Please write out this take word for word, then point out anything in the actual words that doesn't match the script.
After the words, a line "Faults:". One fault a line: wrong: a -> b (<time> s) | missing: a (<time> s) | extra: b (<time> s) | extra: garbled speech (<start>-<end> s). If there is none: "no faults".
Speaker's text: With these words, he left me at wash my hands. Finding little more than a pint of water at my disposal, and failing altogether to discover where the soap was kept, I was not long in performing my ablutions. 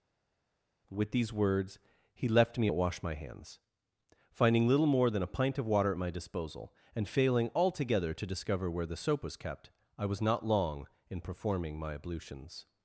With these words, he left me at wash my hands. Finding little more than a pint of water at my disposal, and failing altogether to discover where the soap was kept, I was not long in performing my ablutions.
Faults:
no faults